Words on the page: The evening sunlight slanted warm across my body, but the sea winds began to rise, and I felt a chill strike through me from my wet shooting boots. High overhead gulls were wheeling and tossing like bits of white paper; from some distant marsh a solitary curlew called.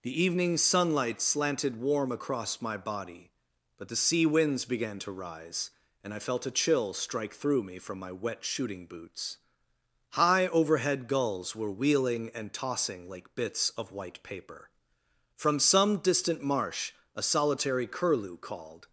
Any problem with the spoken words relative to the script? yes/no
no